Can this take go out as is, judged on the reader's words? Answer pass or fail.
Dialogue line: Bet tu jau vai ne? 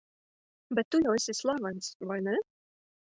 fail